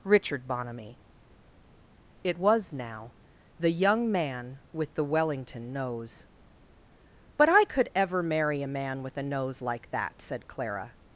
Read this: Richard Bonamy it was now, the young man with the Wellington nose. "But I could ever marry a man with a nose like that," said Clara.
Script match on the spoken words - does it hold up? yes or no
yes